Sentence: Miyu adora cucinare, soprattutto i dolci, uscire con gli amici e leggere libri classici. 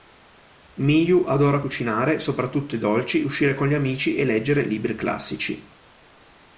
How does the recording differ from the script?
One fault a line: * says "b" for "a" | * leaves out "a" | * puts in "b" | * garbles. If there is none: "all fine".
all fine